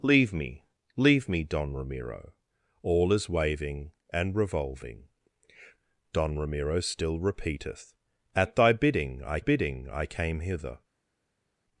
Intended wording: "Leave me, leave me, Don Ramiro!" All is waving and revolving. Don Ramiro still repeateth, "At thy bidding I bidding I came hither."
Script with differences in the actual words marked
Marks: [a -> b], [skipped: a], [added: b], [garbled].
"Leave me, leave me, Don Ramiro!" All is waving and revolving. Don Ramiro still repeateth, "At thy bidding I bidding I came hither."